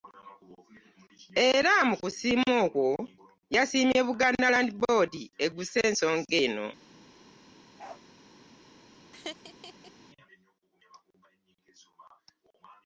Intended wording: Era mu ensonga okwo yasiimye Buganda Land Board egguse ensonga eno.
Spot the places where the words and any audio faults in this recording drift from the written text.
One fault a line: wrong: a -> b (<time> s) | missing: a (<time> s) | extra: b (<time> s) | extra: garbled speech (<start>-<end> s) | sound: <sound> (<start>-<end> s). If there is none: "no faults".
wrong: ensonga -> kusiima (2.0 s)
sound: bark (7.8-8.0 s)
sound: laugh (9.1-9.9 s)